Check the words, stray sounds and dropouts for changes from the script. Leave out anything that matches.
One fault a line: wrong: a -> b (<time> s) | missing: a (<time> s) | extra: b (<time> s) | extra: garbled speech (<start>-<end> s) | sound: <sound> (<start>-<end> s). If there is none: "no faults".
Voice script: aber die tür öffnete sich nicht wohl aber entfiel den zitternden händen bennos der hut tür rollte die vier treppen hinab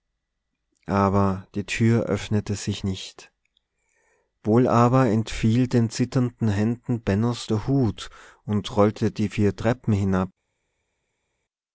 wrong: tür -> und (8.4 s)